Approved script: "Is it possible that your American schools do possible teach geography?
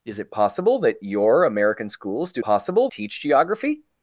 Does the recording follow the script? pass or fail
pass